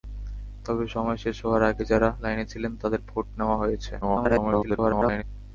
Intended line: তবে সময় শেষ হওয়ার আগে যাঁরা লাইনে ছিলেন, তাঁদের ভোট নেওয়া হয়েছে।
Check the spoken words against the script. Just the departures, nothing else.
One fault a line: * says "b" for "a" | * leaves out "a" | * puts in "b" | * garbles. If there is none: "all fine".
* garbles